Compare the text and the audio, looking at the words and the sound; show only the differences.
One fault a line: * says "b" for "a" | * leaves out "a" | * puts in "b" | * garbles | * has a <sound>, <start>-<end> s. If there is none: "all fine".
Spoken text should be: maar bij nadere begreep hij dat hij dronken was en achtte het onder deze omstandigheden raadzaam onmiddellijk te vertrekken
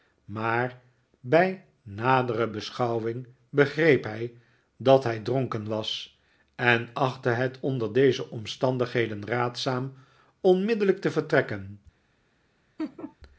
* puts in "beschouwing"
* has a laugh, 12.8-13.2 s